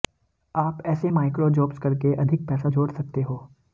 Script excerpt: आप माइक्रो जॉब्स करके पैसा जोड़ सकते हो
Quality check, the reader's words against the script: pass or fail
fail